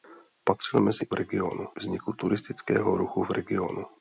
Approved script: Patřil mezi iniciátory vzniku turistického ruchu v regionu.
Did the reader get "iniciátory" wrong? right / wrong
wrong